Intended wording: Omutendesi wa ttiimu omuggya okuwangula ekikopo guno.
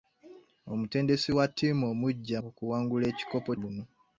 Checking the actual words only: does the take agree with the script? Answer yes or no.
yes